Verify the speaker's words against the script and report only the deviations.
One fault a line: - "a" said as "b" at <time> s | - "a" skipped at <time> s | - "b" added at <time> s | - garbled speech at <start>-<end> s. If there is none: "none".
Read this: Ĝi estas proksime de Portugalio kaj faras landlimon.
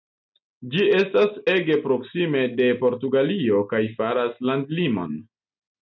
- "ege" added at 1.5 s